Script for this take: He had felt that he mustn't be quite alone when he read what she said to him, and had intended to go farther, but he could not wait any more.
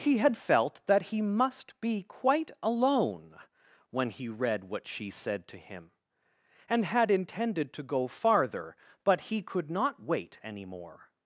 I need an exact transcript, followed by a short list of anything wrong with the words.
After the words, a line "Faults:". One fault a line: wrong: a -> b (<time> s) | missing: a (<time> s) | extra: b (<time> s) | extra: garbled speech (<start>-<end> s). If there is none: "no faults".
He had felt that he must be quite alone when he read what she said to him, and had intended to go farther, but he could not wait any more.
Faults:
wrong: mustn't -> must (1.2 s)